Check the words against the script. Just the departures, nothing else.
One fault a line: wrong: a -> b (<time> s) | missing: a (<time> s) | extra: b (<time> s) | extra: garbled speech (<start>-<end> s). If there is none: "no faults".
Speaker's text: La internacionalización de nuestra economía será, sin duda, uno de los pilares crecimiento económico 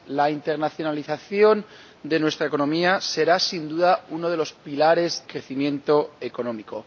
no faults